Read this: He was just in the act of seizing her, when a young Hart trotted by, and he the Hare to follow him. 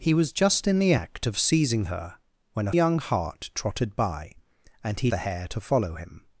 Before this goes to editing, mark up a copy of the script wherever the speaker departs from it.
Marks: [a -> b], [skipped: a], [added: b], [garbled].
He was just in the act of seizing her, when a young Hart trotted by, and he the Hare to follow him.